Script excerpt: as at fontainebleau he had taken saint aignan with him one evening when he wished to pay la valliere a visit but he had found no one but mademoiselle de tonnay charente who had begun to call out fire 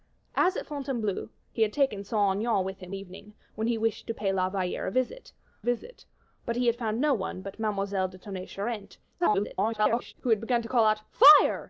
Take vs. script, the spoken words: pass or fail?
fail